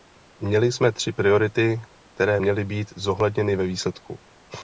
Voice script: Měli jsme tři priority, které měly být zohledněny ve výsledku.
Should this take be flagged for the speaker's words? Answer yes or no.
no